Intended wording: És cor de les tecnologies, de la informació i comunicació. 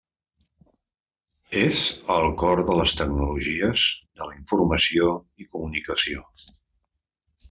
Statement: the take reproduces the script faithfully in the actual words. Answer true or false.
false